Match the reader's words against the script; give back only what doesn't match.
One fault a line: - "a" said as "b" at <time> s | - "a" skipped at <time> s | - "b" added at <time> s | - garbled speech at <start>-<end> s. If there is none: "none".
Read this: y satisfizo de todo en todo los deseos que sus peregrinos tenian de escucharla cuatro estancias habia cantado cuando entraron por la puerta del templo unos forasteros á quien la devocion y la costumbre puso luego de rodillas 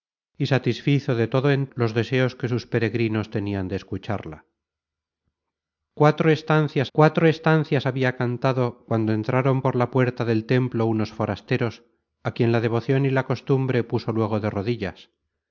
- "todo" skipped at 1.7 s
- "cuatro estancias" added at 6.9 s